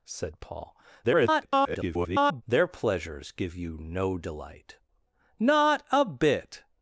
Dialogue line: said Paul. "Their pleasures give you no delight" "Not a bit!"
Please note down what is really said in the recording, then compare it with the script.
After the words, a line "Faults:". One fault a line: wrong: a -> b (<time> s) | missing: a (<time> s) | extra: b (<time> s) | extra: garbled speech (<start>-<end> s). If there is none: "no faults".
said Paul. [garbled] "Their pleasures give you no delight" "Not a bit!"
Faults:
extra: garbled speech (1.0-2.4 s)